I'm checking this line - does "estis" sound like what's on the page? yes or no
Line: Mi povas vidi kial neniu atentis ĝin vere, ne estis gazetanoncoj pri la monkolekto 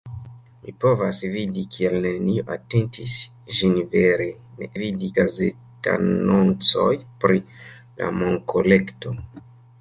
no